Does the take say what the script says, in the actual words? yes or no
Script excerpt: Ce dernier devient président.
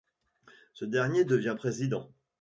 yes